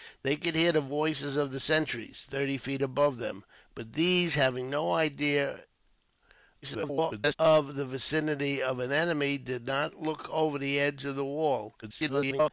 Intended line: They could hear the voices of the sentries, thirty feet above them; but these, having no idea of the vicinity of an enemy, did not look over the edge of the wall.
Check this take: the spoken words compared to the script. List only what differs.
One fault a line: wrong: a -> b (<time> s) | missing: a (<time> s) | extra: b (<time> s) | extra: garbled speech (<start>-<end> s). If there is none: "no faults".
extra: garbled speech (6.6-7.4 s)
extra: garbled speech (11.8-12.5 s)